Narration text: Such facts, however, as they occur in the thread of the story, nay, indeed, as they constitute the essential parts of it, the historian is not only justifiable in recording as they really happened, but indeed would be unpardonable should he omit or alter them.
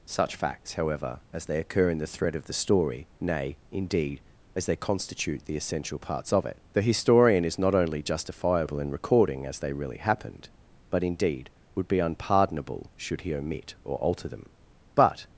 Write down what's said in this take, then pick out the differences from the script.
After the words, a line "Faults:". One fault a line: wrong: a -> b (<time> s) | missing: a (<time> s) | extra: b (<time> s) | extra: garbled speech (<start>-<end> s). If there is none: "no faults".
Such facts, however, as they occur in the thread of the story, nay, indeed, as they constitute the essential parts of it, the historian is not only justifiable in recording as they really happened, but indeed would be unpardonable should he omit or alter them. But
Faults:
extra: But (14.9 s)